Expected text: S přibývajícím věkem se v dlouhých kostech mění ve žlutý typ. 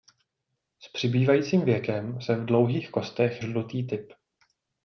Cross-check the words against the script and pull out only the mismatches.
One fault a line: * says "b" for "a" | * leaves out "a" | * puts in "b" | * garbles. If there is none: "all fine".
* leaves out "mění ve"